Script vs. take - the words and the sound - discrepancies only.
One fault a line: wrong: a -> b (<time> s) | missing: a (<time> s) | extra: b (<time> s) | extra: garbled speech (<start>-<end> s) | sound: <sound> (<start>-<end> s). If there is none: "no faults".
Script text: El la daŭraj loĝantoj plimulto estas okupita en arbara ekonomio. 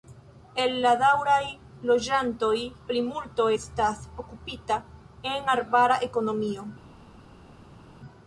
no faults